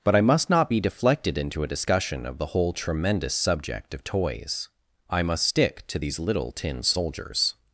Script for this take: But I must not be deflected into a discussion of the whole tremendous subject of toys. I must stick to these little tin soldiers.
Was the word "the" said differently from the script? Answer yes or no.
no